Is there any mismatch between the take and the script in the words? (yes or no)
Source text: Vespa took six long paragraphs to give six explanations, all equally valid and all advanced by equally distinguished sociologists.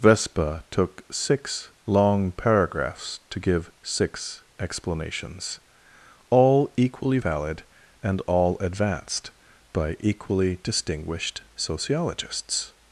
no